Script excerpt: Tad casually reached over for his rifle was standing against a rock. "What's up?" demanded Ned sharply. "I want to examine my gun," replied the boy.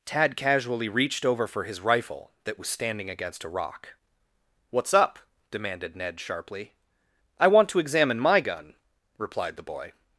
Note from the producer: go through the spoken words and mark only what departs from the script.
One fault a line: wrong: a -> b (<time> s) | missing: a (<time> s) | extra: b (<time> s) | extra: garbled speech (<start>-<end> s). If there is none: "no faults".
extra: that (2.4 s)